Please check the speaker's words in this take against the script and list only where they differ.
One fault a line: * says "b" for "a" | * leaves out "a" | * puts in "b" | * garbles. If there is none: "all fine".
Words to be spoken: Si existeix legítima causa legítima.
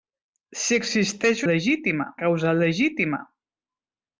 all fine